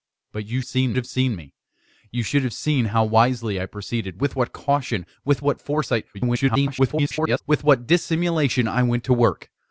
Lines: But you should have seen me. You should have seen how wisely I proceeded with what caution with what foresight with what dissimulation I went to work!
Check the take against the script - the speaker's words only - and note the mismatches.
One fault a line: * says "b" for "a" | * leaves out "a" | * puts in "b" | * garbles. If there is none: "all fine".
* says "seen" for "should"
* garbles